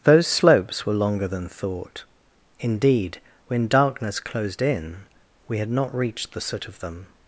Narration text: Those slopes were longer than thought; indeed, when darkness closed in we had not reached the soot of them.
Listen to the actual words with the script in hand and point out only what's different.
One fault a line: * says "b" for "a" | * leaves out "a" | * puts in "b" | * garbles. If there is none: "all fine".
all fine